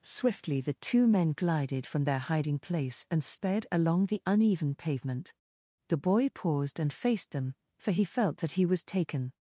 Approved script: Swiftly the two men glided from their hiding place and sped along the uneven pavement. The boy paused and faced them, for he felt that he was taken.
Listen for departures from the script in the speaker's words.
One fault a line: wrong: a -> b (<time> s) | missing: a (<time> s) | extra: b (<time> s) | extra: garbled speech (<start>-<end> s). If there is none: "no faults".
no faults